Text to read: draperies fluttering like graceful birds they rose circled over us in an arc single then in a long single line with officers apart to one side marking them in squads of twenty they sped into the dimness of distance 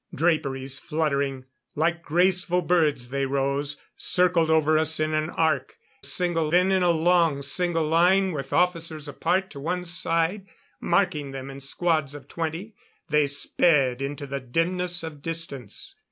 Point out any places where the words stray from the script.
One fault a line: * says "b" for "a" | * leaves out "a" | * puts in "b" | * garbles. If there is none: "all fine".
all fine